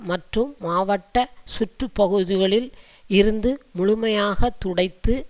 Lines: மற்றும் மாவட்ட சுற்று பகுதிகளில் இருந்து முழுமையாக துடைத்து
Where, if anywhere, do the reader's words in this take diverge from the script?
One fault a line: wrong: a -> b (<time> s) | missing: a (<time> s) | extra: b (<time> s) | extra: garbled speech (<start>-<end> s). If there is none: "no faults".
no faults